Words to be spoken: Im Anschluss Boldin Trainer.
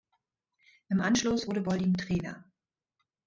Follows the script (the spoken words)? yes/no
no